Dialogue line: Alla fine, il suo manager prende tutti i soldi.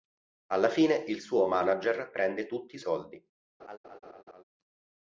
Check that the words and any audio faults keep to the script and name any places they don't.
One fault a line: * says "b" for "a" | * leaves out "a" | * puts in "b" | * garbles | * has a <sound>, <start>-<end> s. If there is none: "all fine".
* has a laugh, 3.6-4.4 s